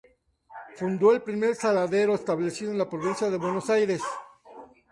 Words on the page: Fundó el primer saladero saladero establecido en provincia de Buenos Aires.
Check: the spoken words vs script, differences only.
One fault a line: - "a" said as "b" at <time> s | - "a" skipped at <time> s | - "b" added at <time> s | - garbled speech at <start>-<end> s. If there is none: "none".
- "saladero" skipped at 2.1 s
- "la" added at 2.8 s